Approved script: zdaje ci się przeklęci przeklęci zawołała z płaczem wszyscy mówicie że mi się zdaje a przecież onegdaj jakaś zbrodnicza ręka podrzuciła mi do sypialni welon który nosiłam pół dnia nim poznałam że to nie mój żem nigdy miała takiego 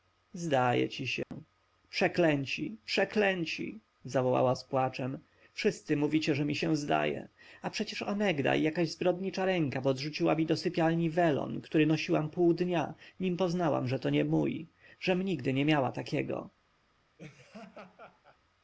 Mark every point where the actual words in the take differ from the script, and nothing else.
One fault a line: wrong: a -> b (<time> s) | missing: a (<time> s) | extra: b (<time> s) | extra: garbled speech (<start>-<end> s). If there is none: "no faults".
extra: nie (15.5 s)